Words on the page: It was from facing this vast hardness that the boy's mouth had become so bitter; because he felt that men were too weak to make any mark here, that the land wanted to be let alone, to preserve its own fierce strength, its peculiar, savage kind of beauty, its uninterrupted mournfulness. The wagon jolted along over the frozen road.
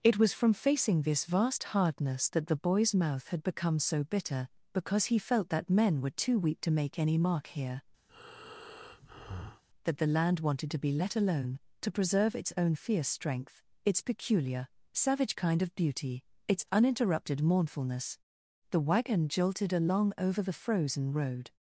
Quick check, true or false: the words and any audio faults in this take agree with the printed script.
false